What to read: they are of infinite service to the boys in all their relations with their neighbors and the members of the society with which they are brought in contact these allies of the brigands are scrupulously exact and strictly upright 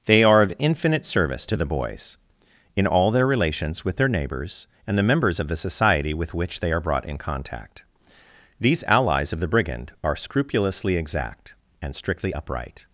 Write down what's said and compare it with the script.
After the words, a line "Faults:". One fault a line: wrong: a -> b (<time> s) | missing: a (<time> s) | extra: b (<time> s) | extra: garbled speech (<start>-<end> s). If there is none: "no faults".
they are of infinite service to the boys in all their relations with their neighbors and the members of the society with which they are brought in contact these allies of the brigand are scrupulously exact and strictly upright
Faults:
wrong: brigands -> brigand (9.5 s)